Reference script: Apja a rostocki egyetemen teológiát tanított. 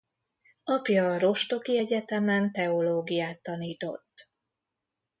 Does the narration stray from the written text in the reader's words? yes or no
no